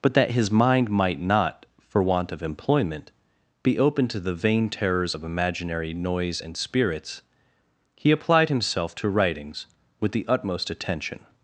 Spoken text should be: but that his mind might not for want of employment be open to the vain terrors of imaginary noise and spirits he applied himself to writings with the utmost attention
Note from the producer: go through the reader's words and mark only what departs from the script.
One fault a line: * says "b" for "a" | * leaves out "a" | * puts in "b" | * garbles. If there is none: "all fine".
all fine